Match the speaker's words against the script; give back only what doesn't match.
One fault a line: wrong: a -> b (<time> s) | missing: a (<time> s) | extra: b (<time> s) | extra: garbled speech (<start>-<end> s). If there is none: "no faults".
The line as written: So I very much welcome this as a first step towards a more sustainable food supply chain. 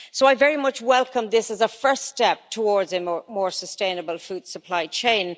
no faults